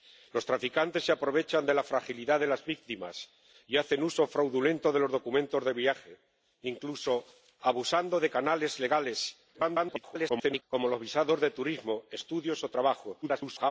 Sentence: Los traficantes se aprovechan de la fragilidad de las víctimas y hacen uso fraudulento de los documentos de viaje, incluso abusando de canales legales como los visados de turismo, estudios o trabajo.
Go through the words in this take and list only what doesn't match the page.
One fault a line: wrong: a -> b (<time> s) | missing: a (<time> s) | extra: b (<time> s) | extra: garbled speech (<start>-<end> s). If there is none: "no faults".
extra: garbled speech (9.5-10.6 s)
extra: garbled speech (13.2-13.7 s)